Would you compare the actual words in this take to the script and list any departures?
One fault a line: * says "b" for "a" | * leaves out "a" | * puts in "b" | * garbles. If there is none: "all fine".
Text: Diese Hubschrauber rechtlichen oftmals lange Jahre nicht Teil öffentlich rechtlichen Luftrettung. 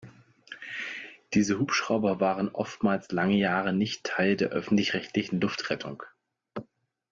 * says "waren" for "rechtlichen"
* puts in "der"